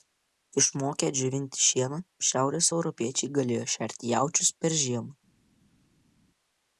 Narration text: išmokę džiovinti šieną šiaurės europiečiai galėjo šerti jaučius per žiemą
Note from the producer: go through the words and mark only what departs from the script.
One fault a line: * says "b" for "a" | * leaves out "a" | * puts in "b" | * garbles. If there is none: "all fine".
all fine